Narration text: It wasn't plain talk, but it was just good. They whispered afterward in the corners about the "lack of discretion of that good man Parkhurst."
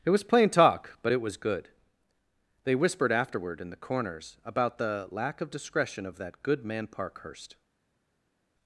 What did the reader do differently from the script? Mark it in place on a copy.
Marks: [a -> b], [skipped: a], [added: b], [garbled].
It [wasn't -> was] plain talk, but it was [skipped: just] good. They whispered afterward in the corners about the "lack of discretion of that good man Parkhurst."